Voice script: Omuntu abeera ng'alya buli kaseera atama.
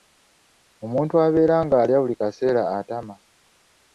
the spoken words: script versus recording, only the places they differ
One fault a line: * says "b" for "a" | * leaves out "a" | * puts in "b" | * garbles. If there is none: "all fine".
all fine